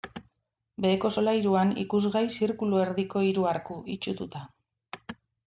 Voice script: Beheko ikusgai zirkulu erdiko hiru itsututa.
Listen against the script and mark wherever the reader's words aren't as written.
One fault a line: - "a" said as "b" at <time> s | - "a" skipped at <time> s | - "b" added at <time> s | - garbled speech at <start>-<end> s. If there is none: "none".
- "solairuan" added at 1.1 s
- "arku" added at 3.6 s